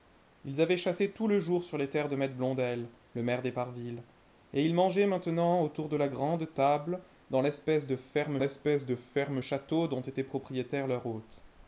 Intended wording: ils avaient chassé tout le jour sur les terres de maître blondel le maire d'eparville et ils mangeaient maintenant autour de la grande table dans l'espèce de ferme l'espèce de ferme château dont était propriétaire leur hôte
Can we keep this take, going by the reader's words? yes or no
yes